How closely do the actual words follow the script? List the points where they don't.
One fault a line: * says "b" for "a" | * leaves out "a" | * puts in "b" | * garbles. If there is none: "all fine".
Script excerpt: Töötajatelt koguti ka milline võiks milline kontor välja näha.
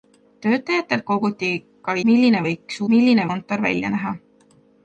all fine